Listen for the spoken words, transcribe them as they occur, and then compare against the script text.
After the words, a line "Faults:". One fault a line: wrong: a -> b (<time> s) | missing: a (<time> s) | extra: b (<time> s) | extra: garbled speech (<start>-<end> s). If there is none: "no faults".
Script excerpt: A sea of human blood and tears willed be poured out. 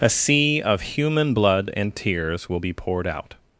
A sea of human blood and tears will be poured out.
Faults:
wrong: willed -> will (2.5 s)